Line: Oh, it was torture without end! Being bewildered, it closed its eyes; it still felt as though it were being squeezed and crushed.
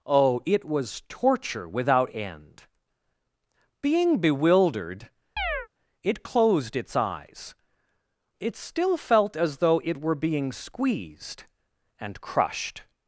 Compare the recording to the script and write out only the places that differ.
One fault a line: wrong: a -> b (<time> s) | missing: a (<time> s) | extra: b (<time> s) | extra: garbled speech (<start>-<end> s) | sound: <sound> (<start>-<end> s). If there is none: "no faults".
sound: chirp (5.4-5.7 s)